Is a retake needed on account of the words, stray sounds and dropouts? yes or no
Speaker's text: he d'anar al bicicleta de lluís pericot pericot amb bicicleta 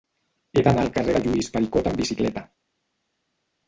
yes